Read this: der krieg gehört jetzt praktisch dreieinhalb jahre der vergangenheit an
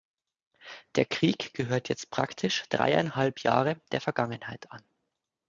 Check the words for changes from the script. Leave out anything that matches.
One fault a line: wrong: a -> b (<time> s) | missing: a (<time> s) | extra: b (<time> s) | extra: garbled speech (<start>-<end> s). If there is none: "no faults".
no faults